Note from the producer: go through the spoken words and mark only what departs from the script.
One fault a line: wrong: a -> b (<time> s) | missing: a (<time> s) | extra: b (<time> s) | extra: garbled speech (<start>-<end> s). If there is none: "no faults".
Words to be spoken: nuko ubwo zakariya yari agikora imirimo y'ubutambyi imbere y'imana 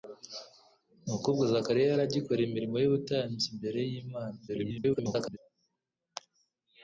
extra: garbled speech (4.5-5.4 s)